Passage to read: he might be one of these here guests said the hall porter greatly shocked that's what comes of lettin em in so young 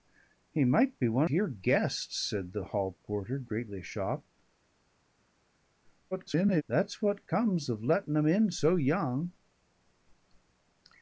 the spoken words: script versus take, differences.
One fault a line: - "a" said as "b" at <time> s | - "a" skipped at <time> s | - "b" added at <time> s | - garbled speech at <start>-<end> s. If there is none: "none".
- "of these" skipped at 1.3 s
- garbled speech at 6.1-6.6 s